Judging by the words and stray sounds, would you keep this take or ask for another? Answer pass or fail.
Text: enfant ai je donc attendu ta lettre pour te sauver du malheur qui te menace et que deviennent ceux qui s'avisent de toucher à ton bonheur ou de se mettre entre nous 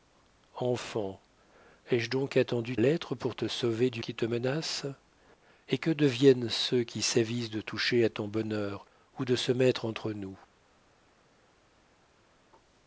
fail